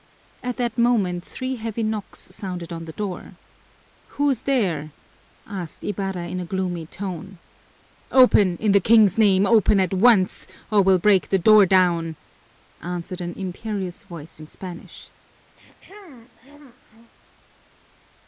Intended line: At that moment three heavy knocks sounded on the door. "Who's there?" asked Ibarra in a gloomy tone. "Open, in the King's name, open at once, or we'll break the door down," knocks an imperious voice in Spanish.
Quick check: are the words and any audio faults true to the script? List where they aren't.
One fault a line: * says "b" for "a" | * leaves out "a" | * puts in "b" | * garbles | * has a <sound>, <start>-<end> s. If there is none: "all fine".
* says "answered" for "knocks"
* has a throat clearing, 15.6-17.1 s